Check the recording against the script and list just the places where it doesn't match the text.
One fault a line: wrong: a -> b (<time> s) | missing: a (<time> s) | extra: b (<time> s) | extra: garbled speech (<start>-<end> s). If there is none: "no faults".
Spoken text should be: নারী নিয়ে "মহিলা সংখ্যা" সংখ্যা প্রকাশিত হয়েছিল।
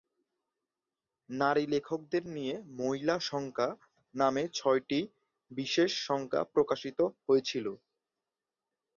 extra: লেখকদের (1.7 s)
extra: নামে ছয়টি বিশেষ (4.2 s)